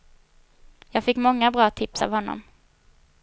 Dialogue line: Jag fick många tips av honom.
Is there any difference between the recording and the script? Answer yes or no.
yes